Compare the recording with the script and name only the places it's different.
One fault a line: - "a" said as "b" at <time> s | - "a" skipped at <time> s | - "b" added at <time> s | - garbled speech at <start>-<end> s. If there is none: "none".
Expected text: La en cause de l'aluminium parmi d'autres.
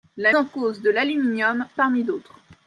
none